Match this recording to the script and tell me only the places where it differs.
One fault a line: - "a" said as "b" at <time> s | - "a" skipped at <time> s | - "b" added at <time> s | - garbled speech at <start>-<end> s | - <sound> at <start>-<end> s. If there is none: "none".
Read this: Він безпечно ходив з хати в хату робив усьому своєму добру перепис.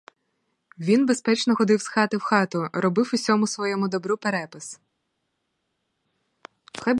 none